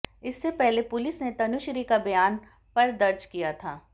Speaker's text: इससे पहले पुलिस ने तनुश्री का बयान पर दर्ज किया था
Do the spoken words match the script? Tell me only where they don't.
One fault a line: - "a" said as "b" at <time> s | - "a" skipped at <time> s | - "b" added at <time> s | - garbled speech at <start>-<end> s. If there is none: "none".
none